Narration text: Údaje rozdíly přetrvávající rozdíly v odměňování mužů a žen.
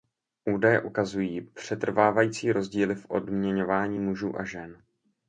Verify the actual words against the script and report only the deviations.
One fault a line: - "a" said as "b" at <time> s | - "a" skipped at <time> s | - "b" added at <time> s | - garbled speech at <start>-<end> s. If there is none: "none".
- "rozdíly" said as "ukazují" at 0.8 s